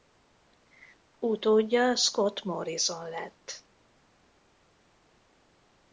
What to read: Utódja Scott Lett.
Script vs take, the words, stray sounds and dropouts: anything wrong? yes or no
yes